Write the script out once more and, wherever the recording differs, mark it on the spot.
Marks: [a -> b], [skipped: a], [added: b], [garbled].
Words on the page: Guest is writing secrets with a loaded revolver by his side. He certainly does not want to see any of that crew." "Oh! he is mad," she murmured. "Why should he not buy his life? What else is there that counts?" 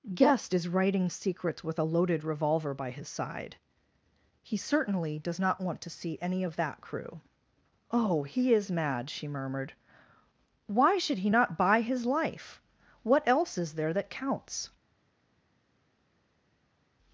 Guest is writing secrets with a loaded revolver by his side. He certainly does not want to see any of that crew." "Oh! he is mad," she murmured. "Why should he not buy his life? What else is there that counts?"